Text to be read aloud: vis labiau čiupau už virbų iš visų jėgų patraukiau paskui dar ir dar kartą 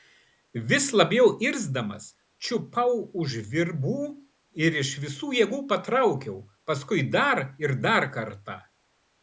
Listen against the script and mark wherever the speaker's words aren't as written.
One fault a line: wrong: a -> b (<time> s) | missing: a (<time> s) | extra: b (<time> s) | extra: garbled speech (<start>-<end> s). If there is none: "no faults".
extra: irzdamas (1.5 s)
extra: ir (4.7 s)